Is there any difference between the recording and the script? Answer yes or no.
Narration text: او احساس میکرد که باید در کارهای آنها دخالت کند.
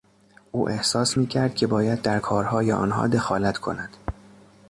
no